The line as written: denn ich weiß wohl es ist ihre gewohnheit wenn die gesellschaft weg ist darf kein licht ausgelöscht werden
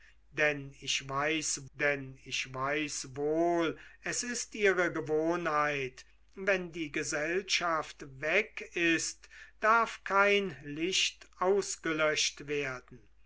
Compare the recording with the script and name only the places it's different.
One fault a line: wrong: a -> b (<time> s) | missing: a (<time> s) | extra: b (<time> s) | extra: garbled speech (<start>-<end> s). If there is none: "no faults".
extra: denn ich weiß (1.7 s)